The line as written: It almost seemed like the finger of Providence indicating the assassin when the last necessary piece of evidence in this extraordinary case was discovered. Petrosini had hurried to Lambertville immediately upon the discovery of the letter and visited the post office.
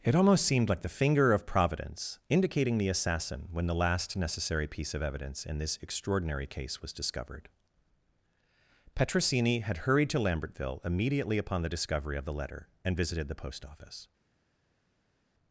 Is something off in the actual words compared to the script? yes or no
no